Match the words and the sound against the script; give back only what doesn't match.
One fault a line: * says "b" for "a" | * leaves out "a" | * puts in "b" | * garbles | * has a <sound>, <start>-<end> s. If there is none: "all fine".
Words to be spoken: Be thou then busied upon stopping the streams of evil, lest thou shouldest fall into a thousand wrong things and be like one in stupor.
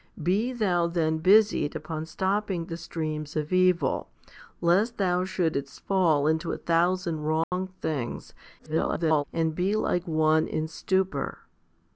* has a dropout, 7.4-7.5 s
* garbles